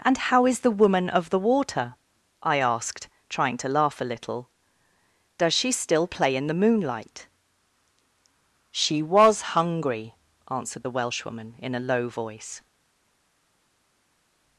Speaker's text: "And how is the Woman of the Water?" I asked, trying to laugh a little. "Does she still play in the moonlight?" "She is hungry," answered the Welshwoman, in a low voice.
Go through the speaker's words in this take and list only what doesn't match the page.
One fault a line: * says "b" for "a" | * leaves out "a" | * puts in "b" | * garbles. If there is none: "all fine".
* says "was" for "is"